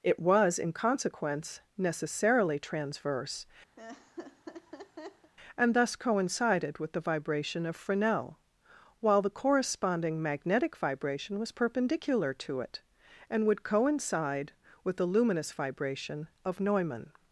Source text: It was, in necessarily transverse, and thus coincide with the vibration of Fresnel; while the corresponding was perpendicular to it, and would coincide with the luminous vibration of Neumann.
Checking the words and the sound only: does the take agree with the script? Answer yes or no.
no